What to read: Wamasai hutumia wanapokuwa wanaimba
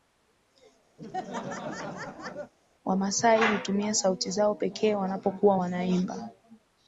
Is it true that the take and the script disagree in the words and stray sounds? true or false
true